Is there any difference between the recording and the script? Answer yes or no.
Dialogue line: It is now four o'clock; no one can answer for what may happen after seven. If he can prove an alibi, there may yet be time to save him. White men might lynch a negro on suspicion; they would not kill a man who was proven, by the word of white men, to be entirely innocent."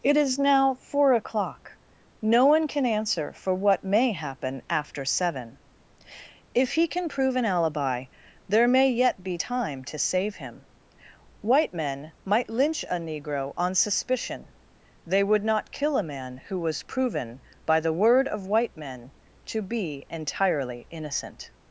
no